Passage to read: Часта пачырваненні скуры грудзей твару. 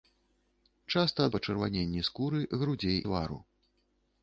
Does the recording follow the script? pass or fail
pass